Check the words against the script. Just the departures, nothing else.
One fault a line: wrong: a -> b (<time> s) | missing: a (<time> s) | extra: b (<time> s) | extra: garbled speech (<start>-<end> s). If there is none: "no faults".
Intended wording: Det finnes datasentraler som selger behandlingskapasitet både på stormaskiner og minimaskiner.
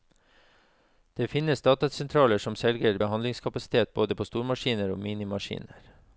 no faults